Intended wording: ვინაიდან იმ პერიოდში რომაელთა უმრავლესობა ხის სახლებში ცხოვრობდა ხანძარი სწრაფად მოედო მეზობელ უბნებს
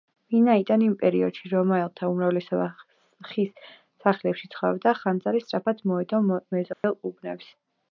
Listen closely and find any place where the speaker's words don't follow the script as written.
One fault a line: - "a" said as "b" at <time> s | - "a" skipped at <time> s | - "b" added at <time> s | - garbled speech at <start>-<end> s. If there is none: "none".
none